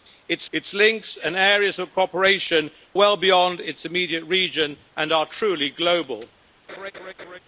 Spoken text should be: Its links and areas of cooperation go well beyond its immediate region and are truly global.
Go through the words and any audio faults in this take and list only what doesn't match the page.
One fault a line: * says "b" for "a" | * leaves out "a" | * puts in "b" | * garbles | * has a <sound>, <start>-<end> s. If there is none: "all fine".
* puts in "its"
* leaves out "go"
* has a laugh, 6.7-7.4 s